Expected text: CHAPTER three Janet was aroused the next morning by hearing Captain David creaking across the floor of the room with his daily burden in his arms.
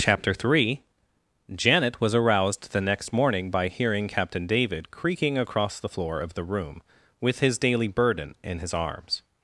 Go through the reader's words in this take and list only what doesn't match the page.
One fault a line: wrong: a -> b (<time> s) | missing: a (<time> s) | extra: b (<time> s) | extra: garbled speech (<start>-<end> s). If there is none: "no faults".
no faults